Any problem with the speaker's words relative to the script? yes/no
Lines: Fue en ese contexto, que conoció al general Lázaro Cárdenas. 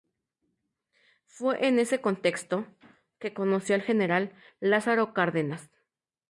no